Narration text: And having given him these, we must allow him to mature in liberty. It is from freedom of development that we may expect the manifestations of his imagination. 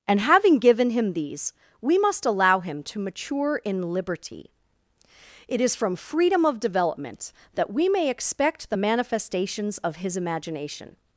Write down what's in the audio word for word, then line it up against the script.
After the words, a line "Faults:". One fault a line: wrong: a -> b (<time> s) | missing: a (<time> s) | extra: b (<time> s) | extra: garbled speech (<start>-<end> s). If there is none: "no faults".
And having given him these, we must allow him to mature in liberty. It is from freedom of development that we may expect the manifestations of his imagination.
Faults:
no faults